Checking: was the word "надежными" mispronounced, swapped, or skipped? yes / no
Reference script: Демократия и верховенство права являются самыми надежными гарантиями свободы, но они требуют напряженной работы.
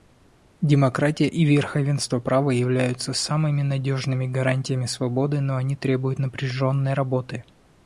no